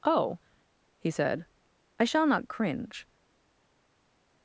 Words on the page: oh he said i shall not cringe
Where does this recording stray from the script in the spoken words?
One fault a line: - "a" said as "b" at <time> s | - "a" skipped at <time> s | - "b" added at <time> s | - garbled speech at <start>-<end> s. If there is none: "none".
none